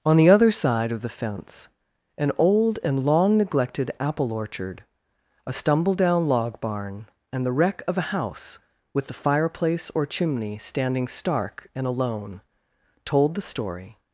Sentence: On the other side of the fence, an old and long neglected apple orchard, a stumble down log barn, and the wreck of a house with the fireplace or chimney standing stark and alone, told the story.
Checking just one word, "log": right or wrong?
right